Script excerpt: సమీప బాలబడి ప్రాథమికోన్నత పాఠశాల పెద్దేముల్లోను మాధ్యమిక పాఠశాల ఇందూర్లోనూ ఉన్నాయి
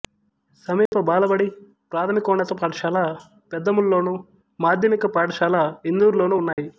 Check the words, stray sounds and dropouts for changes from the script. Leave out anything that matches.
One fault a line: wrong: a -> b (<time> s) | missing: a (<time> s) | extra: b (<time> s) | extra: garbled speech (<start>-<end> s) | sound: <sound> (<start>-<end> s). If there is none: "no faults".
sound: dropout (0.9-0.9 s)
sound: dropout (6.5-6.6 s)